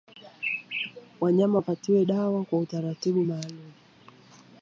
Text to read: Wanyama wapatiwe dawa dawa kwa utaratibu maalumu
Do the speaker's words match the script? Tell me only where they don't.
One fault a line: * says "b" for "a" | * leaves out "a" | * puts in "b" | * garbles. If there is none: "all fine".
* leaves out "dawa"